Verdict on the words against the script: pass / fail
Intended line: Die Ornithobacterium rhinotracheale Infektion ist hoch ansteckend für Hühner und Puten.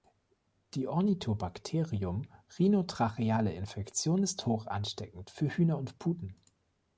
pass